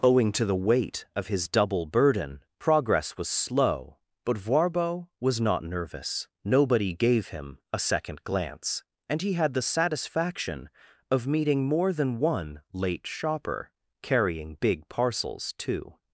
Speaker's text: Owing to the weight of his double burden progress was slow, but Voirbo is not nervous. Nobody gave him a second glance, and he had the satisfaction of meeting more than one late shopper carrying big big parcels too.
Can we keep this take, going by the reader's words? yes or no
no